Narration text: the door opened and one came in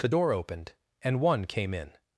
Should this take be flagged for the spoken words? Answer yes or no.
no